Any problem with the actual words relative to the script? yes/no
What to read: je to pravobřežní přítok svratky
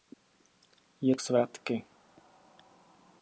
yes